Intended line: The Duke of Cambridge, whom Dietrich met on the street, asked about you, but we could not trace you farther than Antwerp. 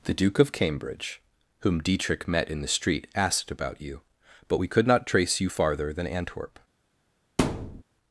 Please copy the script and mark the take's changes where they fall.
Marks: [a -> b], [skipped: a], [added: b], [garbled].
The Duke of Cambridge, whom Dietrich met [on -> in] the street, asked about you, but we could not trace you farther than Antwerp.